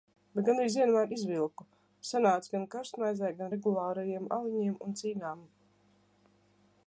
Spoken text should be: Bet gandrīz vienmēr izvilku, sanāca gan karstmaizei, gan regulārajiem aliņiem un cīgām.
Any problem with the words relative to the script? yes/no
no